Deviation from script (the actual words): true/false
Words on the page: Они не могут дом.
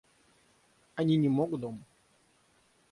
false